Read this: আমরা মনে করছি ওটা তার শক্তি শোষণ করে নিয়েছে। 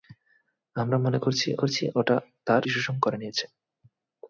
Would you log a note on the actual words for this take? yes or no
yes